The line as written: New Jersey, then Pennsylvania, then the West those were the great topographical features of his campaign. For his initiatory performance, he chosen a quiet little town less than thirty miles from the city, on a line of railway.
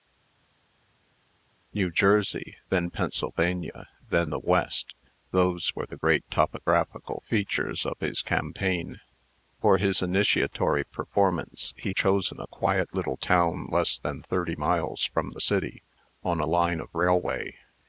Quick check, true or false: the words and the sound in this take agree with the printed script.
true